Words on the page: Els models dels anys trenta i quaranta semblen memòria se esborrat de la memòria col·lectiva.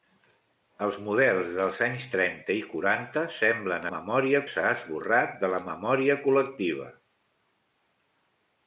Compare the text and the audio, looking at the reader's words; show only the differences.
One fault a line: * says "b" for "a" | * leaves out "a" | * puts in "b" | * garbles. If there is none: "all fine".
all fine